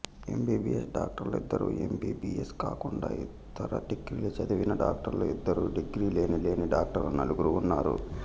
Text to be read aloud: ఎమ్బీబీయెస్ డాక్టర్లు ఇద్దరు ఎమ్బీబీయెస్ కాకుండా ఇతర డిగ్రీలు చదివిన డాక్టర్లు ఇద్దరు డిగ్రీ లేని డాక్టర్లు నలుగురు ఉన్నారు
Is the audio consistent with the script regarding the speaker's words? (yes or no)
no